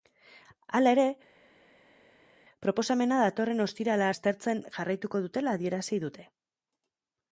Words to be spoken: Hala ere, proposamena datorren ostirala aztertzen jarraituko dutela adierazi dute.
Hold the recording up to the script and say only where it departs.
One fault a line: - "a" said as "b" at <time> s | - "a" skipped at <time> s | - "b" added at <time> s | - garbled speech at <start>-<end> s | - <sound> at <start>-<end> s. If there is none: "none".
none